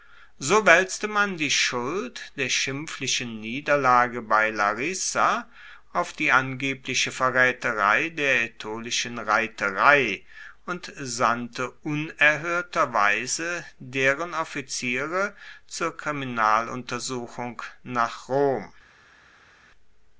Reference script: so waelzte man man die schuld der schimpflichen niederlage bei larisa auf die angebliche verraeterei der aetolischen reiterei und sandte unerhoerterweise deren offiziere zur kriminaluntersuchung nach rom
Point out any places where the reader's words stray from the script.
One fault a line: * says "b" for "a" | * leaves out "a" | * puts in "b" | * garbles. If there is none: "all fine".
* leaves out "man"